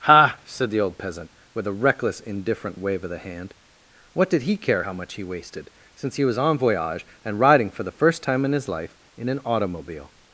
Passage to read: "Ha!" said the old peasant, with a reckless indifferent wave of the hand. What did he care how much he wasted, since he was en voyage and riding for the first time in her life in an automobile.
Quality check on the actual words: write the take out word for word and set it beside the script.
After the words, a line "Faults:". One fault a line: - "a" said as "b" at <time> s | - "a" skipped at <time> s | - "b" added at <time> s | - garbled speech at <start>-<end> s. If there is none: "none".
"Ha!" said the old peasant, with a reckless indifferent wave of the hand. What did he care how much he wasted, since he was en voyage and riding for the first time in his life in an automobile.
Faults:
- "her" said as "his" at 8.5 s